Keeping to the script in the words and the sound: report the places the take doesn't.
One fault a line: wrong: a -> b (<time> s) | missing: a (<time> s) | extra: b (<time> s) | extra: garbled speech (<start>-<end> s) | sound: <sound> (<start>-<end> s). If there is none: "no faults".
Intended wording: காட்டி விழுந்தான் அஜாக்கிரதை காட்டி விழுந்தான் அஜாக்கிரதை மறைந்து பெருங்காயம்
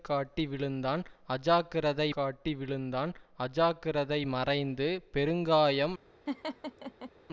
sound: laugh (6.3-7.1 s)